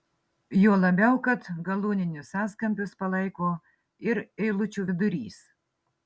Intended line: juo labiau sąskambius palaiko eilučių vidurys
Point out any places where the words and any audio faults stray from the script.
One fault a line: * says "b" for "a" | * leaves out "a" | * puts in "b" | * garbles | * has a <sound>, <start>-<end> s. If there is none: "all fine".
* puts in "kad galūninius"
* puts in "ir"